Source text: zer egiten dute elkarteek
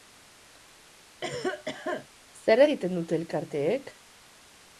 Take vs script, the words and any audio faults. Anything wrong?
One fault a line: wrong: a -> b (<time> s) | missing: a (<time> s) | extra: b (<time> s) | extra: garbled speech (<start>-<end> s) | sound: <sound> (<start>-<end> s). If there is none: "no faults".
sound: cough (1.2-2.1 s)